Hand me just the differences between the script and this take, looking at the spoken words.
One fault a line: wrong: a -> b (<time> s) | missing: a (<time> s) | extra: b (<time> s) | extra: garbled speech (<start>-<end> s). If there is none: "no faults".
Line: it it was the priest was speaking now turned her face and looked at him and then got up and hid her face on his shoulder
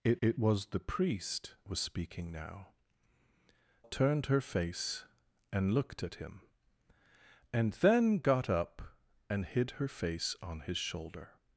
no faults